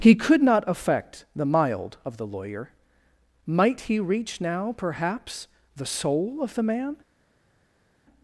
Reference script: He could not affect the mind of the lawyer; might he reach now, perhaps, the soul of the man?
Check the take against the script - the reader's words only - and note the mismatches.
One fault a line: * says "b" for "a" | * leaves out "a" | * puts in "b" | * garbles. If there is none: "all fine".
* says "mild" for "mind"